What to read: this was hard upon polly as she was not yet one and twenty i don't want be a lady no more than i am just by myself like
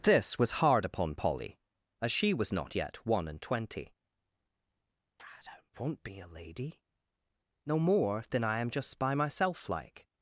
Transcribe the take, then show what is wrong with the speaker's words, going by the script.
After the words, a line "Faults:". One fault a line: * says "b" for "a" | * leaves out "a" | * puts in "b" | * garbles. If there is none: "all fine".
this was hard upon polly as she was not yet one and twenty i don't want be a lady no more than i am just by myself like
Faults:
all fine